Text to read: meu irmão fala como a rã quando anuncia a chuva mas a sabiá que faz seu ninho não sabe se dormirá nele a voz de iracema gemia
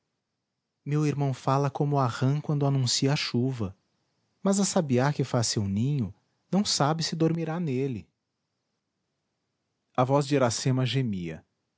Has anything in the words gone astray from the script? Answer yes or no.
no